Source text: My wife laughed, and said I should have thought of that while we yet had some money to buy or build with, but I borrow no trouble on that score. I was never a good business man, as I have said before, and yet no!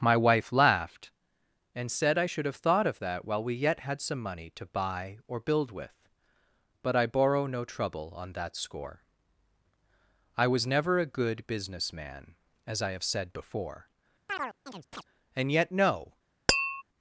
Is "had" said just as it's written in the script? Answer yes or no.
yes